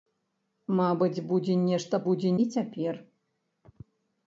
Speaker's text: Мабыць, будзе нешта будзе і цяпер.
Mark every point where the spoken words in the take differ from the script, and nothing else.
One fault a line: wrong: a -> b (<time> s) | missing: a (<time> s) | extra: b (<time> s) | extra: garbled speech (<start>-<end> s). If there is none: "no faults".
no faults